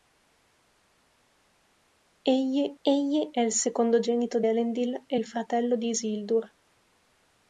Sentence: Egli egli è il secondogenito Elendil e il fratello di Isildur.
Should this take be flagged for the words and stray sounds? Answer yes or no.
no